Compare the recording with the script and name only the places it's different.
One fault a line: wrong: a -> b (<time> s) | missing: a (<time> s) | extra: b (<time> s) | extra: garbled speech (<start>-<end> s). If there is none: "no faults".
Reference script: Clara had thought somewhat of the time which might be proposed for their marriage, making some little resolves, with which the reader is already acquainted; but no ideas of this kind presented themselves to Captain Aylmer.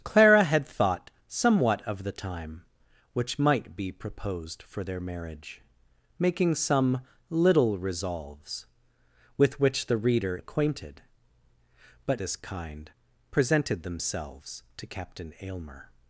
missing: is already (10.4 s)
missing: no ideas of (12.2 s)